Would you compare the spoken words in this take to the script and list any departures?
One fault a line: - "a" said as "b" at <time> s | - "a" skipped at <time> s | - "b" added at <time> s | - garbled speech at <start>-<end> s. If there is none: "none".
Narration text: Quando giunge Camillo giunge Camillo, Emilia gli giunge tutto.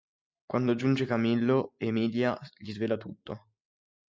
- "giunge Camillo" skipped at 1.8 s
- "giunge" said as "svela" at 2.7 s